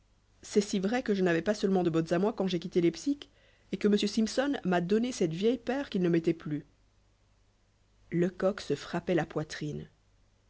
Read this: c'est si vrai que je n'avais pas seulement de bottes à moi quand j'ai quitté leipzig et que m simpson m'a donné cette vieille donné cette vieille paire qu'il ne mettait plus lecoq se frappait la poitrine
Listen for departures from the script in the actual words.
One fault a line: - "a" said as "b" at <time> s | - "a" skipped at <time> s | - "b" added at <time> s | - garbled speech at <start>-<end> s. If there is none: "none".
- "donné cette vieille" skipped at 5.6 s